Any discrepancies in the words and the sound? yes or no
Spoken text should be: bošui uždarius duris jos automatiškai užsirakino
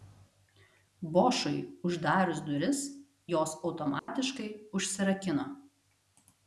yes